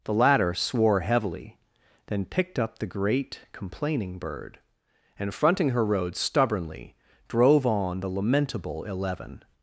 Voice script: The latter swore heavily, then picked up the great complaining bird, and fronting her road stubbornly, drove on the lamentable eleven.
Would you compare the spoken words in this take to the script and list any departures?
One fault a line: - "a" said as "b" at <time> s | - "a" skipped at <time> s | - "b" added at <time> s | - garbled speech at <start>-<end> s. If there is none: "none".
none